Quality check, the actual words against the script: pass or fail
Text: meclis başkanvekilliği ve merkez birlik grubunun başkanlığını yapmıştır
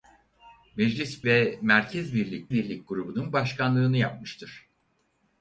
fail